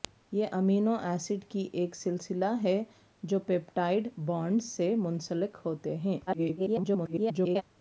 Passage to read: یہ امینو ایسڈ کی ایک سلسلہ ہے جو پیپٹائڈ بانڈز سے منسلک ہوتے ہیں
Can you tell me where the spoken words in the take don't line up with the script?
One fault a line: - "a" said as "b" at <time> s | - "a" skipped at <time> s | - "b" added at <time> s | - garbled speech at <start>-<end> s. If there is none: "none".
- garbled speech at 6.3-7.6 s